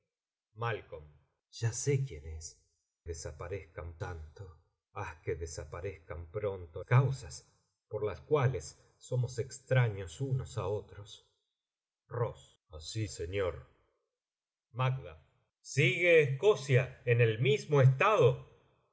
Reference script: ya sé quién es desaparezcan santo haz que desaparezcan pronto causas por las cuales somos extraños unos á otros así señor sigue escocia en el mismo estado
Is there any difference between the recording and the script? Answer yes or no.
no